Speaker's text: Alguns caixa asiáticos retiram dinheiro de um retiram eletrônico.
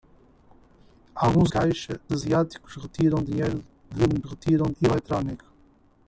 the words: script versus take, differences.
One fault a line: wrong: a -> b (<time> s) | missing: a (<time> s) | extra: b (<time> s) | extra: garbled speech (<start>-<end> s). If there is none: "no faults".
no faults